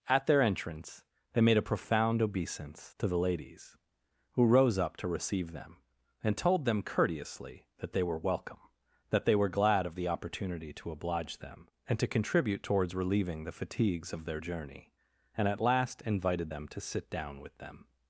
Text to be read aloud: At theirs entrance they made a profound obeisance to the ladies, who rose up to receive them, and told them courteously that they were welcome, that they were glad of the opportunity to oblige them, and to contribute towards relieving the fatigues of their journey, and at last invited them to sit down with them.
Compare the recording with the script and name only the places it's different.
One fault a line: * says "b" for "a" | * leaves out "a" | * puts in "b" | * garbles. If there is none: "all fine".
* says "their" for "theirs"